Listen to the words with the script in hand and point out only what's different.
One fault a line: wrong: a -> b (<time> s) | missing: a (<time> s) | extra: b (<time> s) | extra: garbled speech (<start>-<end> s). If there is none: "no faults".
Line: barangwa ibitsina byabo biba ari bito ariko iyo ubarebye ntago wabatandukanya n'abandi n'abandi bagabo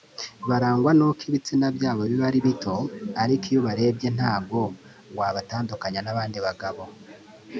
extra: n'uko (1.0 s)
missing: n'abandi (6.4 s)